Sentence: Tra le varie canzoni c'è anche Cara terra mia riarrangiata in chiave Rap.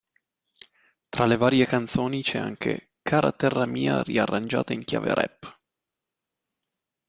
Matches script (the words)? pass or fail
pass